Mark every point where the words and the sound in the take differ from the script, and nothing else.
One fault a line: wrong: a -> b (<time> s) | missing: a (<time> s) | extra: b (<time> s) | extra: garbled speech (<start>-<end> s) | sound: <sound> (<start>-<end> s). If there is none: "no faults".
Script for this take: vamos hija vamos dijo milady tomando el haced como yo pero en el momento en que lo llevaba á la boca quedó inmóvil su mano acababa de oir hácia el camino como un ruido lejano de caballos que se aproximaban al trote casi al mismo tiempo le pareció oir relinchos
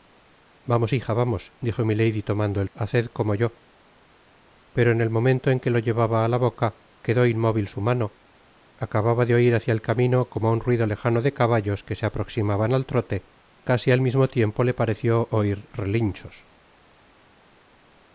no faults